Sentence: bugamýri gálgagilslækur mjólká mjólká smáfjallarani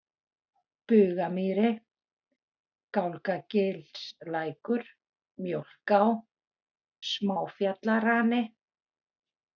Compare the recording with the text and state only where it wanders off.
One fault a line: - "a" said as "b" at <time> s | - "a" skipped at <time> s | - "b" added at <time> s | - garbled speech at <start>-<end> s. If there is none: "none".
- "mjólká" skipped at 6.0 s